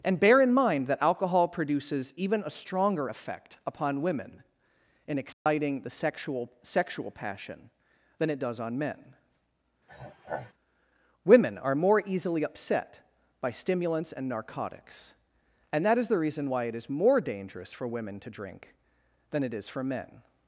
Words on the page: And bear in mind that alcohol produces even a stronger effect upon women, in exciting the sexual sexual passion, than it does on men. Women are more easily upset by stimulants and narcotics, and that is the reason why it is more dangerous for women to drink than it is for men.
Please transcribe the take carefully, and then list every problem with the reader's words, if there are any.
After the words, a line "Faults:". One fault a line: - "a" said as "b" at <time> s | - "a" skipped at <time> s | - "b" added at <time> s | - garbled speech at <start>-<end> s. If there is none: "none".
And bear in mind that alcohol produces even a stronger effect upon women, in exciting the sexual sexual passion, than it does on men. Women are more easily upset by stimulants and narcotics, and that is the reason why it is more dangerous for women to drink than it is for men.
Faults:
none